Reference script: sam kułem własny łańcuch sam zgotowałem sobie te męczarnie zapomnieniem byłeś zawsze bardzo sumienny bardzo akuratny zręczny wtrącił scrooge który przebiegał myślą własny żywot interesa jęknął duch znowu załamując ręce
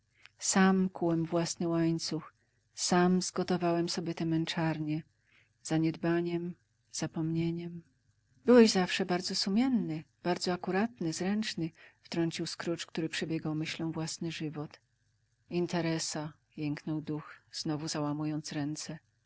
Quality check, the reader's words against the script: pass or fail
fail